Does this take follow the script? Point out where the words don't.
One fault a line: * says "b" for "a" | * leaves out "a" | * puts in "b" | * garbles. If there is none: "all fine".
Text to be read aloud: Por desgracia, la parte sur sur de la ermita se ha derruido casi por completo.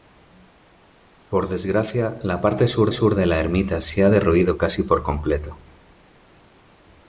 all fine